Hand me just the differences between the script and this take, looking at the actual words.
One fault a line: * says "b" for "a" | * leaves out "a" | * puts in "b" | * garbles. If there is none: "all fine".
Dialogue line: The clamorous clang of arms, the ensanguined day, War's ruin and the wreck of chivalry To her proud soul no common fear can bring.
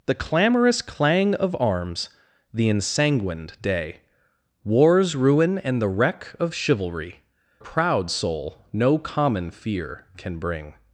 * leaves out "To her"